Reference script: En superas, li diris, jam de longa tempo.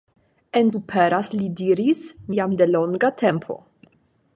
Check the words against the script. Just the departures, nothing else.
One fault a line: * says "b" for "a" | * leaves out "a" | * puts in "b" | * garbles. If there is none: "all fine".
all fine